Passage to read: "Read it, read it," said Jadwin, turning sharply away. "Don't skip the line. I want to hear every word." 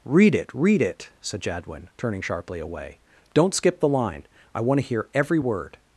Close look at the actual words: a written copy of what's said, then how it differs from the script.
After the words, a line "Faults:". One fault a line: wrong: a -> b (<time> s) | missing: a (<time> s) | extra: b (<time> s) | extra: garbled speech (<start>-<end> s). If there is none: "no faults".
"Read it, read it," said Jadwin, turning sharply away. "Don't skip the line. I want to hear every word."
Faults:
no faults